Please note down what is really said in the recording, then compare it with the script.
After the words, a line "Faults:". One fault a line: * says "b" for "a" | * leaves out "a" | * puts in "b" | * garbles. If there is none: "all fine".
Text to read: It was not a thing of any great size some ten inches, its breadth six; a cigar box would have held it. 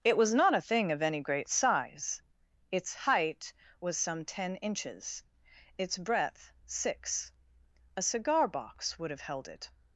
It was not a thing of any great size its height was some ten inches, its breadth six; a cigar box would have held it.
Faults:
* puts in "its height was"